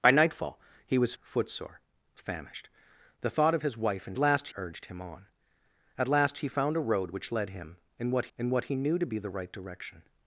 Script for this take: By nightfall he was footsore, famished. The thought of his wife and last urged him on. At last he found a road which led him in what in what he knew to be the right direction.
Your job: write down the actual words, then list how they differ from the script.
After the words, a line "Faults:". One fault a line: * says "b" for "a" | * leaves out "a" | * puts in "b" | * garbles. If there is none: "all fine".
By nightfall he was footsore, famished. The thought of his wife and last urged him on. At last he found a road which led him in what in what he knew to be the right direction.
Faults:
all fine